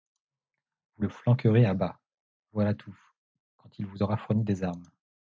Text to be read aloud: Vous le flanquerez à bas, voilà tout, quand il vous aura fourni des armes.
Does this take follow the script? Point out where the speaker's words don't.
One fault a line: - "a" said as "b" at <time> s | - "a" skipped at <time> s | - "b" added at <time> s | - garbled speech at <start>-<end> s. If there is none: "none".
none